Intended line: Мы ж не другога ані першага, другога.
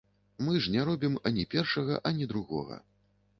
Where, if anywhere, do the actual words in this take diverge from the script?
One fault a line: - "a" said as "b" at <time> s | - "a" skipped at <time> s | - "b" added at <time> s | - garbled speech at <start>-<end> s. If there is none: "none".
- "другога" said as "робім" at 0.9 s
- "ані" added at 2.1 s